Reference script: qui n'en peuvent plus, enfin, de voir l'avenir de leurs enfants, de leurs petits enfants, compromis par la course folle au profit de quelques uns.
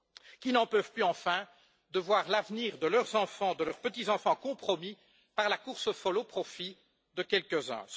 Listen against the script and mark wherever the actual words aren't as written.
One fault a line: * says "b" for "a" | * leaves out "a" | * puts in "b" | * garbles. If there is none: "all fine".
all fine